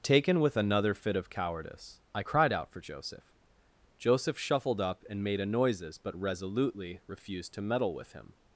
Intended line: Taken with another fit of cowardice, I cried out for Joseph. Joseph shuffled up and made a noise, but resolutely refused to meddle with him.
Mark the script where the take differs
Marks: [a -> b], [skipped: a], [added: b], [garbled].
Taken with another fit of cowardice, I cried out for Joseph. Joseph shuffled up and made a [noise, -> noises] but resolutely refused to meddle with him.